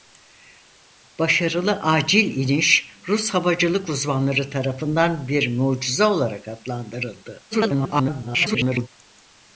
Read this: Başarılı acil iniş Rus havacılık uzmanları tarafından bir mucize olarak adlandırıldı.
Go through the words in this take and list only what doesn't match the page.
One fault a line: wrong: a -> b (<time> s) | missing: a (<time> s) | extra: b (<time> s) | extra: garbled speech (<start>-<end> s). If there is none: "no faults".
extra: garbled speech (7.5-8.9 s)